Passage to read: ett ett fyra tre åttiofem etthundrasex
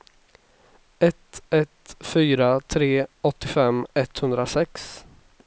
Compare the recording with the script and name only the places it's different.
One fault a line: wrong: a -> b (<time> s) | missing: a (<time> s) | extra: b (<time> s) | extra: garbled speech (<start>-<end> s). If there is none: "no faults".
no faults